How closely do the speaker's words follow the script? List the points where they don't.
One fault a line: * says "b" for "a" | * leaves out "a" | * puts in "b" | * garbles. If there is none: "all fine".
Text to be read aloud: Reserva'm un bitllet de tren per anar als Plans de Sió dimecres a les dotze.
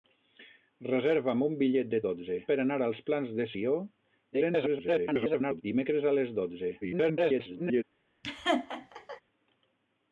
* says "dotze" for "tren"
* garbles
* garbles